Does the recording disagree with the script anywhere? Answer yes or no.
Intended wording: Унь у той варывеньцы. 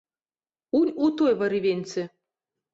no